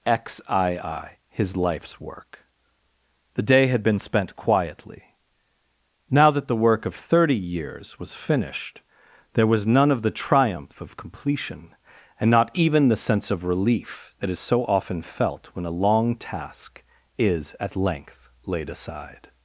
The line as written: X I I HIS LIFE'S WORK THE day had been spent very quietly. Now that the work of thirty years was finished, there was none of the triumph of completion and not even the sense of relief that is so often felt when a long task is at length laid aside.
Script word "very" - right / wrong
wrong